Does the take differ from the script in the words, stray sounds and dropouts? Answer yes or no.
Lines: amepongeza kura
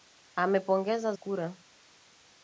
no